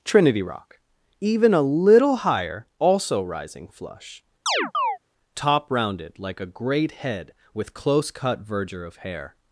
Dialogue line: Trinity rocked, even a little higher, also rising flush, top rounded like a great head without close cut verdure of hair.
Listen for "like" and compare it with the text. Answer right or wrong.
right